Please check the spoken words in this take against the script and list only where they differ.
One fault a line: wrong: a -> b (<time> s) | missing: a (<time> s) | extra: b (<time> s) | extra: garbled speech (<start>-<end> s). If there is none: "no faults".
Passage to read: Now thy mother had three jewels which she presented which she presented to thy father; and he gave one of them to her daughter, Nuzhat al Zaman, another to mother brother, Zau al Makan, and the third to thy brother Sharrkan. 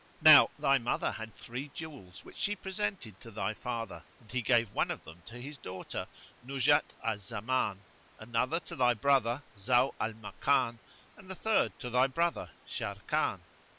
missing: which she presented (3.2 s)
wrong: her -> his (5.4 s)
wrong: mother -> thy (8.8 s)